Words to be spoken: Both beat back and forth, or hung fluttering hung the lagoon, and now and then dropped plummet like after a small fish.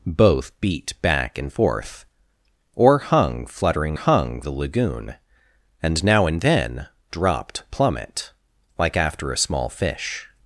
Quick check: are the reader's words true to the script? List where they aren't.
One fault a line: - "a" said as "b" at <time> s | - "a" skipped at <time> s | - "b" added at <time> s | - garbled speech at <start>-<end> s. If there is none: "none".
none